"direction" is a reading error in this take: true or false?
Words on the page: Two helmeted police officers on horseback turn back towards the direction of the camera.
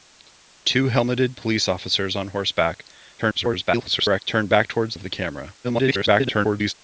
true